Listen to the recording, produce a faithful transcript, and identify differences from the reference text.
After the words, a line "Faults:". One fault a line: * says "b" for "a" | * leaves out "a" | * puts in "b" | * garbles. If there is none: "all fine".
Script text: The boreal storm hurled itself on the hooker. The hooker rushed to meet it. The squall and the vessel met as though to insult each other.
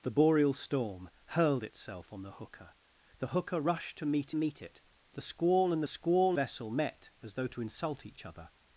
The boreal storm hurled itself on the hooker. The hooker rushed to meet meet it. The squall and squall vessel met as though to insult each other.
Faults:
* puts in "meet"
* says "squall" for "the"